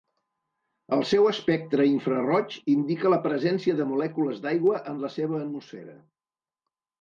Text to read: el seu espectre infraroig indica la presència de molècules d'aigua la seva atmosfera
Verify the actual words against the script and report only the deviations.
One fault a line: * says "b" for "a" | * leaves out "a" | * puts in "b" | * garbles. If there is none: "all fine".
* puts in "en"